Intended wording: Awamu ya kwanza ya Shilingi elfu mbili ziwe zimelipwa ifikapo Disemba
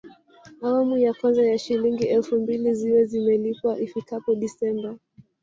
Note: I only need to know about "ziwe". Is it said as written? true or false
true